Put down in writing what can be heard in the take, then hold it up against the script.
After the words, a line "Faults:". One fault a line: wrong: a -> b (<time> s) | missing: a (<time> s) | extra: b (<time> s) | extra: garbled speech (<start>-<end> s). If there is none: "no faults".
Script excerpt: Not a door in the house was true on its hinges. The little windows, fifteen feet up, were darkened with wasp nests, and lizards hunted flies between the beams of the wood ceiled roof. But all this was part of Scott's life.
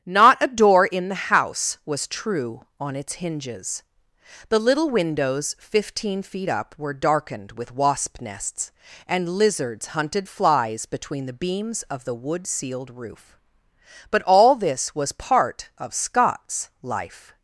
Not a door in the house was true on its hinges. The little windows, fifteen feet up, were darkened with wasp nests, and lizards hunted flies between the beams of the wood ceiled roof. But all this was part of Scott's life.
Faults:
no faults